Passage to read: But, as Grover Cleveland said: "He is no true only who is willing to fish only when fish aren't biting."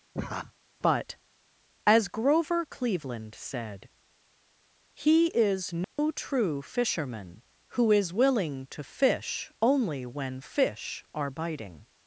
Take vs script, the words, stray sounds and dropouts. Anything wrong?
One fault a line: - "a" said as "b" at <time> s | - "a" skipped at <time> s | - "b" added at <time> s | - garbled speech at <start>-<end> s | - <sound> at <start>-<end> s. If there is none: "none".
- laugh at 0.1-0.5 s
- dropout at 5.8-6.0 s
- "only" said as "fisherman" at 6.6 s
- "aren't" said as "are" at 11.2 s